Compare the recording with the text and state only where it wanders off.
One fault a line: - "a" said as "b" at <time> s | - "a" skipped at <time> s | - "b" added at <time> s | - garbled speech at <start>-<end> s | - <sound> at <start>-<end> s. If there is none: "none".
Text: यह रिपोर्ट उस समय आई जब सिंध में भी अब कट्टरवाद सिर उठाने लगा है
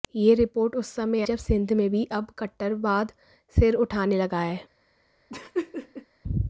- "आई" skipped at 1.2 s
- laugh at 5.3-6.1 s